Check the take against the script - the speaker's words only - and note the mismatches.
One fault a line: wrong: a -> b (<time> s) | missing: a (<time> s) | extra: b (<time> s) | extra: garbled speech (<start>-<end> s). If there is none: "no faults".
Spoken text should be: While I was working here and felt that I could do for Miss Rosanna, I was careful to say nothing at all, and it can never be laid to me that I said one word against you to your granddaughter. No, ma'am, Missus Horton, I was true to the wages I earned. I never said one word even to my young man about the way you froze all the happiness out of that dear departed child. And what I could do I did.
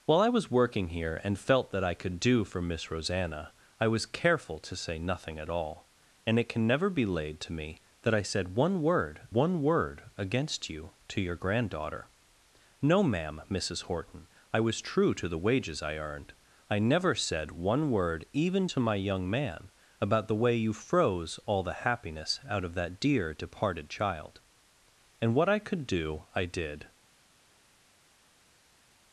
extra: one word (9.3 s)